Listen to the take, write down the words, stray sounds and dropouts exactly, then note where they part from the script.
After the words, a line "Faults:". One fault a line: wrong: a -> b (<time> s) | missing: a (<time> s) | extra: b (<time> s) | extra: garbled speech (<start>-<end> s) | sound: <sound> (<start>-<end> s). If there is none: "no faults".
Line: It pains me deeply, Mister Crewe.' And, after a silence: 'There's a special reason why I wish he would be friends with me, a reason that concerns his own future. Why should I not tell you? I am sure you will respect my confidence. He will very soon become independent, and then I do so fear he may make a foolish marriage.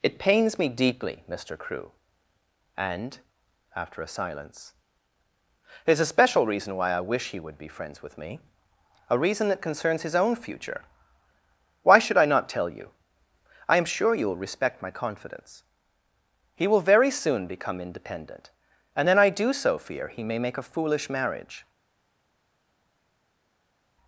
It pains me deeply, Mister Crewe.' And, after a silence: 'There's a special reason why I wish he would be friends with me, a reason that concerns his own future. Why should I not tell you? I am sure you will respect my confidence. He will very soon become independent, and then I do so fear he may make a foolish marriage.
Faults:
no faults